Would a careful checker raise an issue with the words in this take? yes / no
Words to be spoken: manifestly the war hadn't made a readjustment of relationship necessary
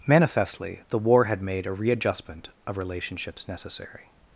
yes